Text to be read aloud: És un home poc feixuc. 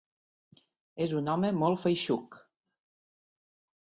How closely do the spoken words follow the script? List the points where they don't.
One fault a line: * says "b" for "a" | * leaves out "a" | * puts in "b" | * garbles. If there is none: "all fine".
* says "molt" for "poc"